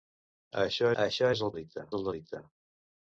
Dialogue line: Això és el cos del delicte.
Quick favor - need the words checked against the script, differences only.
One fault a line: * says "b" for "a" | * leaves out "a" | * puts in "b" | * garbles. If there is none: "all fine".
* puts in "això"
* says "delicte" for "cos"